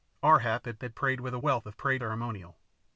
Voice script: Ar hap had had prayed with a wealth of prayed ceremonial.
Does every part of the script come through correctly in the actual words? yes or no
yes